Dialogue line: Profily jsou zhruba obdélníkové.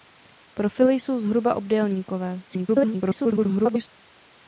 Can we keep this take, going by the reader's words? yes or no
no